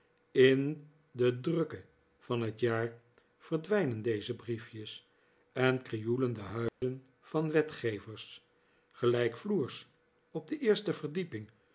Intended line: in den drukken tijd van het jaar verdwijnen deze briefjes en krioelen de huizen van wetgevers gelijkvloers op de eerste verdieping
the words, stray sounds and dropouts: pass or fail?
fail